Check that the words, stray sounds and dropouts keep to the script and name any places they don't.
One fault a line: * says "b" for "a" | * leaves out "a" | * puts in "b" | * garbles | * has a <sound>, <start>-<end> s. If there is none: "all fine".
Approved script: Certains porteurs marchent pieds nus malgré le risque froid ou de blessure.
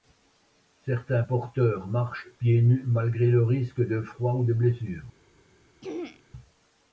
* puts in "de"
* has a throat clearing, 5.8-6.2 s